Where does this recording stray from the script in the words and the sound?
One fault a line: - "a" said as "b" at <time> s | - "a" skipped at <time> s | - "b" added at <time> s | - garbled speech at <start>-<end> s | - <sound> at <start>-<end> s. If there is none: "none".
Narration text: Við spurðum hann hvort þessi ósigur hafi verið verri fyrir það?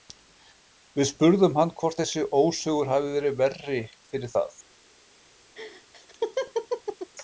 - laugh at 5.5-7.1 s